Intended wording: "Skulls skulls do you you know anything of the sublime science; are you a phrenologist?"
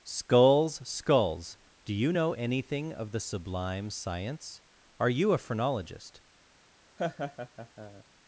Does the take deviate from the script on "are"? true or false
false